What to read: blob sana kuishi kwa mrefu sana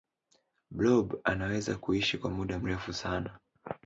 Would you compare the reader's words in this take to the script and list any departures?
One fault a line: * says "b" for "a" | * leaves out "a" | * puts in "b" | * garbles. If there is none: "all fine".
* says "anaweza" for "sana"
* puts in "muda"